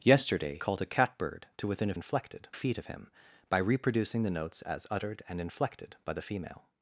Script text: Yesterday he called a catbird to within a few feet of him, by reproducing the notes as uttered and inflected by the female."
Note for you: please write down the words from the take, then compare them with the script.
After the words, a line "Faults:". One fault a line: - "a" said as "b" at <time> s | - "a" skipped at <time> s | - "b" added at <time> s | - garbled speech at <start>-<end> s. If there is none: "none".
Yesterday called a catbird to within a inflected feet of him, by reproducing the notes as uttered and inflected by the female."
Faults:
- "he" skipped at 0.6 s
- "few" said as "inflected" at 1.9 s